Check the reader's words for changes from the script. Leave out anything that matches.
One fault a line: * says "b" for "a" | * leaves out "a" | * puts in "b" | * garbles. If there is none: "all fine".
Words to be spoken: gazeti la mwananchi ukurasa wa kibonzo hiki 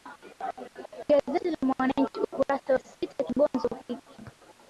* puts in "sita"